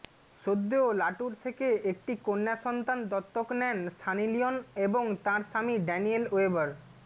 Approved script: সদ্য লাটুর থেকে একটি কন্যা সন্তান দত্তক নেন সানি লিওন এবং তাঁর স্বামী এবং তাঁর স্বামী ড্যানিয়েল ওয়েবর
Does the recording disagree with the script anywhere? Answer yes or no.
yes